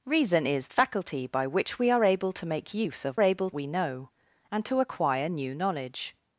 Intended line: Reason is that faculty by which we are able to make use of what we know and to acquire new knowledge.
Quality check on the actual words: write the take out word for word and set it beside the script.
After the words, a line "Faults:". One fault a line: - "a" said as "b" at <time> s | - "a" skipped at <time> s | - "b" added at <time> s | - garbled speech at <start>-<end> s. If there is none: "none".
Reason is faculty by which we are able to make use of able we know and to acquire new knowledge.
Faults:
- "that" skipped at 0.7 s
- "what" said as "able" at 3.2 s